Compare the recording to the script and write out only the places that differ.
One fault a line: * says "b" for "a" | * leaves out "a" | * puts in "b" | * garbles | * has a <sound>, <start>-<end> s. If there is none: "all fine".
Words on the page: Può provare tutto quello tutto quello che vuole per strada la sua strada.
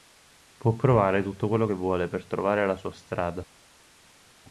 * leaves out "tutto quello"
* says "trovare" for "strada"